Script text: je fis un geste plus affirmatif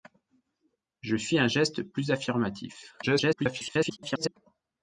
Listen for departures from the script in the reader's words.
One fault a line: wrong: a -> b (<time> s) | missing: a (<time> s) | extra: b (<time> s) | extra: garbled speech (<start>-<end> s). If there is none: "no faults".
extra: garbled speech (3.0-4.4 s)